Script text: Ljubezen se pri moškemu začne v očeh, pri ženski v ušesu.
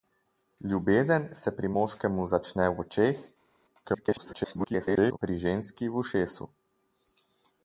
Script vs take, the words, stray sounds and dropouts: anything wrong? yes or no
yes